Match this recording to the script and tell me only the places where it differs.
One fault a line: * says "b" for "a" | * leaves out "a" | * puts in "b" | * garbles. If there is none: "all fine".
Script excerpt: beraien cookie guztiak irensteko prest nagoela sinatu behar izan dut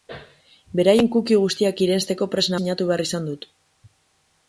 * leaves out "nagoela"